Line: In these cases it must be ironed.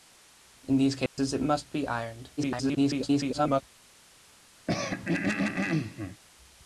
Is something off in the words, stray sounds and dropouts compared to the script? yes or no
yes